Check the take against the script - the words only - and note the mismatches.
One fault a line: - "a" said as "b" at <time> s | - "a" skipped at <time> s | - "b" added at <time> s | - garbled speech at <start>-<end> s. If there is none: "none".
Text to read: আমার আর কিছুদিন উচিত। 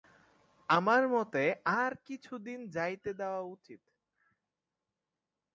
- "মতে" added at 1.1 s
- "যাইতে দেওয়া" added at 2.7 s